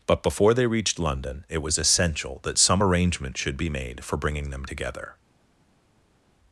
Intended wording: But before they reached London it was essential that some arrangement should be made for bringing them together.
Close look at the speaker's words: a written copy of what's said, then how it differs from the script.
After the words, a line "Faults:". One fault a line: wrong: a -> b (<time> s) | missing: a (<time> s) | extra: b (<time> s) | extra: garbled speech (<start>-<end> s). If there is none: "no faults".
But before they reached London it was essential that some arrangement should be made for bringing them together.
Faults:
no faults